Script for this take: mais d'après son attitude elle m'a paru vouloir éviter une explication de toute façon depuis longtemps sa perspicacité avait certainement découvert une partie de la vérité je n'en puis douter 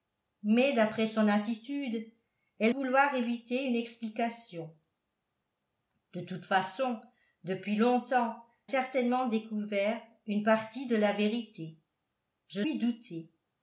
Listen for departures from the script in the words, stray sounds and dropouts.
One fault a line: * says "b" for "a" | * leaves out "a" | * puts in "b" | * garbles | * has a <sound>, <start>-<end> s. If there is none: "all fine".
* leaves out "m'a paru"
* leaves out "sa perspicacité avait"
* leaves out "n'en"